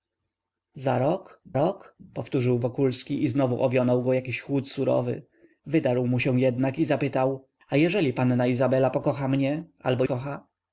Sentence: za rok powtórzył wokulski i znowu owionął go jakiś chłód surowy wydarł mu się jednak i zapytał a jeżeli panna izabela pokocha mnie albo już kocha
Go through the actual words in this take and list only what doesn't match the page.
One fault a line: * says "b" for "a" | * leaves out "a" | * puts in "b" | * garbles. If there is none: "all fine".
* puts in "rok"
* leaves out "już"